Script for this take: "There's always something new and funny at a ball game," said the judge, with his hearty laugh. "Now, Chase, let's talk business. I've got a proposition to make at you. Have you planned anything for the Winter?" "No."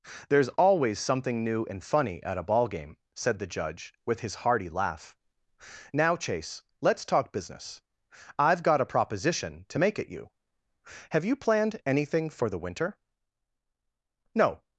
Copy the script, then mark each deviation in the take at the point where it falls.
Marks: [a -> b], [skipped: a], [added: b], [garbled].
"There's always something new and funny at a ball game," said the judge, with his hearty laugh. "Now, Chase, let's talk business. I've got a proposition to make at you. Have you planned anything for the Winter?" "No."